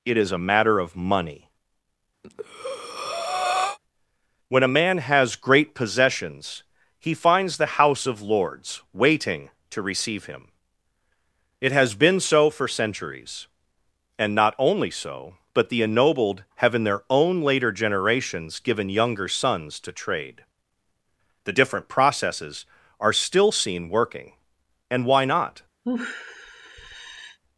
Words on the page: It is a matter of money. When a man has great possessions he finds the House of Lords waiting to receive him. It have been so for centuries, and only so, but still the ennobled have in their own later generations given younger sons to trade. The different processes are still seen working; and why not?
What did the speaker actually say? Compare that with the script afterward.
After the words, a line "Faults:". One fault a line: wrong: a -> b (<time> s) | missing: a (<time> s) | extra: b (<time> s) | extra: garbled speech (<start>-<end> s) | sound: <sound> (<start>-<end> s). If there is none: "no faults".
It is a matter of money. When a man has great possessions he finds the House of Lords waiting to receive him. It has been so for centuries, and not only so, but the ennobled have in their own later generations given younger sons to trade. The different processes are still seen working; and why not?
Faults:
sound: breath (2.2-3.8 s)
wrong: have -> has (11.7 s)
extra: not (14.4 s)
missing: still (15.7 s)
sound: sigh (25.8-27.4 s)